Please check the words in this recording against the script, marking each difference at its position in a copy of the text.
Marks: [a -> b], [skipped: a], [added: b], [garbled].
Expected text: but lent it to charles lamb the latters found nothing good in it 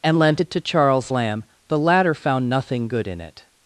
[but -> and] lent it to charles lamb the [latters -> latter] found nothing good in it